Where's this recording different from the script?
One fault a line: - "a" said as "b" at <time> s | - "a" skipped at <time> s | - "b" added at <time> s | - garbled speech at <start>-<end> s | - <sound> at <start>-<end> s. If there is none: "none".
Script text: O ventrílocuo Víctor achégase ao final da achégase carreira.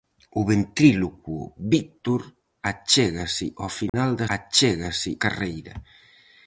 - dropout at 3.9-3.9 s